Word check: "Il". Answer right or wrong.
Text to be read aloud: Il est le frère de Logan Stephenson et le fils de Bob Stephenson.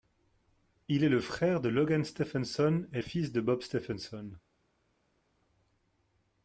right